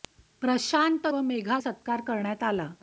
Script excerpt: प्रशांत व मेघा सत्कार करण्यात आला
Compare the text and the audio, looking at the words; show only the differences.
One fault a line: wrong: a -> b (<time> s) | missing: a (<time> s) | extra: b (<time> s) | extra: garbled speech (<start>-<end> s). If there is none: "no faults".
no faults